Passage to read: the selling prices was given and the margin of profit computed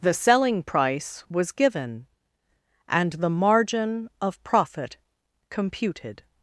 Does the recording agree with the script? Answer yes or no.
no